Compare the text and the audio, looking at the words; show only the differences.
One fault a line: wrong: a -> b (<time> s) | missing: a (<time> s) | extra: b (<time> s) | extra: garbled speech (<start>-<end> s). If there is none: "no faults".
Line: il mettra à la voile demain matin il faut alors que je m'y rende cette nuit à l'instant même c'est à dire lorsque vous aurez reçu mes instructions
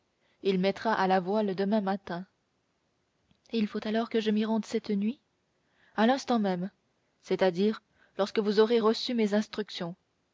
no faults